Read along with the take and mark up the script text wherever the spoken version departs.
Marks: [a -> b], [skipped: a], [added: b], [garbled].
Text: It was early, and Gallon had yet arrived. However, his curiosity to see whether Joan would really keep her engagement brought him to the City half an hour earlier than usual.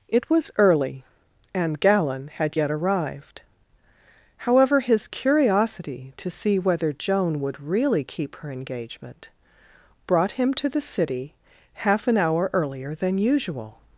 It was early, and Gallon had yet arrived. However, his curiosity to see whether Joan would really keep her engagement brought him to the City half an hour earlier than usual.